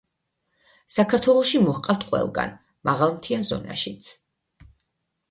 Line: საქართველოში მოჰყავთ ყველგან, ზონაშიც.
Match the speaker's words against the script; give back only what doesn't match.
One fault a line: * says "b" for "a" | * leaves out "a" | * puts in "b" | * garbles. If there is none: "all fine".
* puts in "მაღალმთიან"